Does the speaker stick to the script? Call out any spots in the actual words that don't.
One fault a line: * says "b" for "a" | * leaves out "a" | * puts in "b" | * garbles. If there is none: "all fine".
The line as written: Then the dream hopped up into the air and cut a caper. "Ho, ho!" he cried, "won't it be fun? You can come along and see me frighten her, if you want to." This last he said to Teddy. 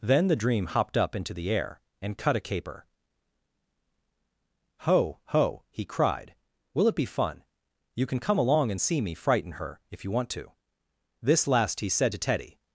* says "will" for "won't"